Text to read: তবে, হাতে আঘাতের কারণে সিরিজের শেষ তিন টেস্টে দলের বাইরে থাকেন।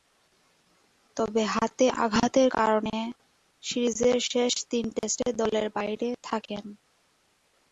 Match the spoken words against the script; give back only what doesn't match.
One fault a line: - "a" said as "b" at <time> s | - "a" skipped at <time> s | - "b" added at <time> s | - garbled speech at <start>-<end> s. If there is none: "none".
none